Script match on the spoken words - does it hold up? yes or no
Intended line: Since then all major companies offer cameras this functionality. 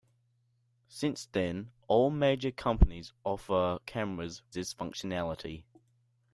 yes